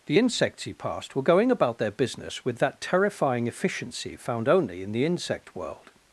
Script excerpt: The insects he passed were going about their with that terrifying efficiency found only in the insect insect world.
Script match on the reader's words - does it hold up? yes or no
no